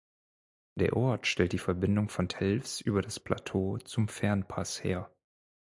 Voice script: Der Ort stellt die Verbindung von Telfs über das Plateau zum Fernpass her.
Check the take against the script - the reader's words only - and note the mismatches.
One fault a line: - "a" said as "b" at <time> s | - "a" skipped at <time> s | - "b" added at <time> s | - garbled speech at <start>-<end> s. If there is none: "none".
none